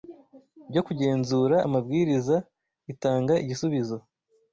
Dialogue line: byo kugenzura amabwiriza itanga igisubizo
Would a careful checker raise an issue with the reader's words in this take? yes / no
no